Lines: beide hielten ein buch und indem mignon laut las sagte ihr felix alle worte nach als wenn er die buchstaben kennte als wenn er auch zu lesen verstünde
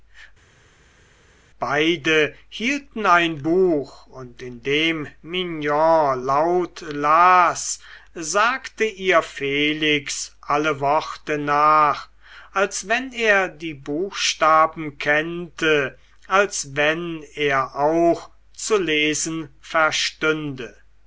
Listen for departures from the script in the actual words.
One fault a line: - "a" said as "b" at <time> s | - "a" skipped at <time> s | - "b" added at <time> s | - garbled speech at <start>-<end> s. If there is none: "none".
none